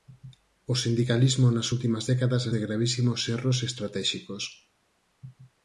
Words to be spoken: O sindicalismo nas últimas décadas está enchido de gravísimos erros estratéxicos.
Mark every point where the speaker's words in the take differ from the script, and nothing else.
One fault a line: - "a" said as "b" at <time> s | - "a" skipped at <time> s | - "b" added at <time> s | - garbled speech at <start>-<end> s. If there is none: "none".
- "está enchido" skipped at 2.4 s